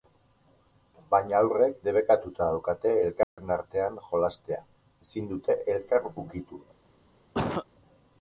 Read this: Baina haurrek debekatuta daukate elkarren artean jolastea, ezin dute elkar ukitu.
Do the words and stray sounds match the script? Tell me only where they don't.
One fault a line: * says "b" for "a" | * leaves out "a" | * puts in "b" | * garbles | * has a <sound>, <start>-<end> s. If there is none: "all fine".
* has a dropout, 3.2-3.4 s
* has a cough, 7.3-7.7 s